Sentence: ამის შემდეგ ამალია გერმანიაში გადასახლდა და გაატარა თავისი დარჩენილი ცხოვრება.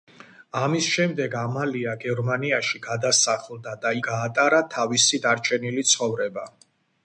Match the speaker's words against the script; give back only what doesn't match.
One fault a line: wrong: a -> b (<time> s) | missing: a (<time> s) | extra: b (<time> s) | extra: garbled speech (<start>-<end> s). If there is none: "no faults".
no faults